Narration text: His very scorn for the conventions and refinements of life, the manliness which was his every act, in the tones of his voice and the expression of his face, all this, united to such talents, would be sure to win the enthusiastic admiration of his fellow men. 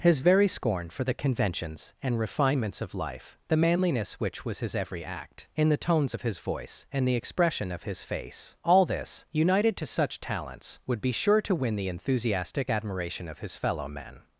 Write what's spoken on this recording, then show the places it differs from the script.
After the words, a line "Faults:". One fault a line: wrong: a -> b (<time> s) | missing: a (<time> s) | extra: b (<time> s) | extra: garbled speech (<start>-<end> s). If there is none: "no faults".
His very scorn for the conventions and refinements of life, the manliness which was his every act, in the tones of his voice and the expression of his face, all this, united to such talents, would be sure to win the enthusiastic admiration of his fellow men.
Faults:
no faults